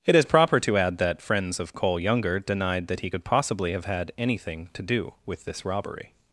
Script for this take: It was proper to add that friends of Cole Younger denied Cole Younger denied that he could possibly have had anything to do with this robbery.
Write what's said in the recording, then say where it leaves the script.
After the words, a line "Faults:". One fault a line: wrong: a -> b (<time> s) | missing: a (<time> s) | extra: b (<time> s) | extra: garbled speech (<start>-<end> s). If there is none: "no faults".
It is proper to add that friends of Cole Younger denied that he could possibly have had anything to do with this robbery.
Faults:
wrong: was -> is (0.1 s)
missing: Cole Younger denied (2.9 s)